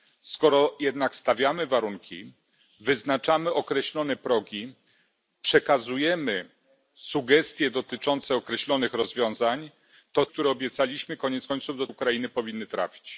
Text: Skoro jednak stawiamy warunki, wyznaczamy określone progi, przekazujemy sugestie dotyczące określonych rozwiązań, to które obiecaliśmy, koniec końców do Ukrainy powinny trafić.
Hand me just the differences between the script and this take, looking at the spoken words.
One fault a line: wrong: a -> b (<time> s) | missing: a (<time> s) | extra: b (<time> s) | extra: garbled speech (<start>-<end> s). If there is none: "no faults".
no faults